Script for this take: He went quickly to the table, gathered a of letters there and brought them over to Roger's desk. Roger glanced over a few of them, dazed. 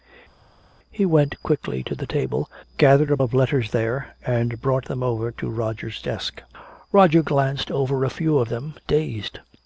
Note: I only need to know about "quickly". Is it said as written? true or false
true